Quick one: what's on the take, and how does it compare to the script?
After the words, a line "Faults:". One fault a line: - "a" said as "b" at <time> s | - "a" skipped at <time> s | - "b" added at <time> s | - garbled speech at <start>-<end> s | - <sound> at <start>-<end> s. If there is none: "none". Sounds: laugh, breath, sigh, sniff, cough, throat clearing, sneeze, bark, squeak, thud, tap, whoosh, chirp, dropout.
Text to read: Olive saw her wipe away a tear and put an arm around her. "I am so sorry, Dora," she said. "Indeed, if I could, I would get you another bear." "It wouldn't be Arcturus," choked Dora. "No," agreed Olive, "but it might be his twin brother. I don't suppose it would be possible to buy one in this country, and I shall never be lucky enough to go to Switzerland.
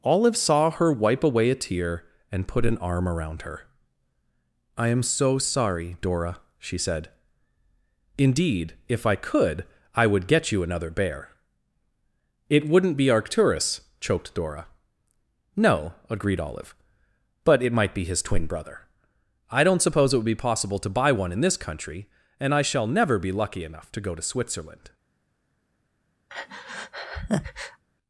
Olive saw her wipe away a tear and put an arm around her. "I am so sorry, Dora," she said. "Indeed, if I could, I would get you another bear." "It wouldn't be Arcturus," choked Dora. "No," agreed Olive, "but it might be his twin brother. I don't suppose it would be possible to buy one in this country, and I shall never be lucky enough to go to Switzerland.
Faults:
- breath at 26.3-27.8 s